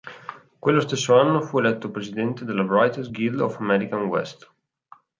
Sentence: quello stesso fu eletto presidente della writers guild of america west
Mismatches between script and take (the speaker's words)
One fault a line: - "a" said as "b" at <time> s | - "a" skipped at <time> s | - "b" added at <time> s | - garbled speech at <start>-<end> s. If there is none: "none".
- "anno" added at 1.1 s